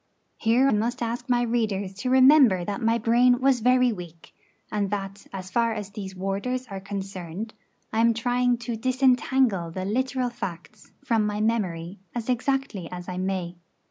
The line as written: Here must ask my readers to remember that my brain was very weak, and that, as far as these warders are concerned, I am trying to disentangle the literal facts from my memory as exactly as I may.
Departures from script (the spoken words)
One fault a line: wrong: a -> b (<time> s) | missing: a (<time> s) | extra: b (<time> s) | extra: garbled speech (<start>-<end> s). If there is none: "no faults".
no faults